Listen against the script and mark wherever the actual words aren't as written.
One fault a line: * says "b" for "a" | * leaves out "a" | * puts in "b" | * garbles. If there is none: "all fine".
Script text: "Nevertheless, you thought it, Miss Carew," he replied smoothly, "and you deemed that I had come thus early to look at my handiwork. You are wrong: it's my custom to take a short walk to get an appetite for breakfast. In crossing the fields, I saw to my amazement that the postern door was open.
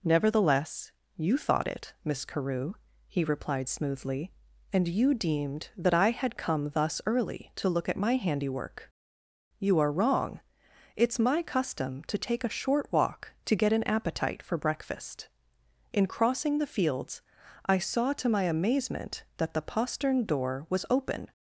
all fine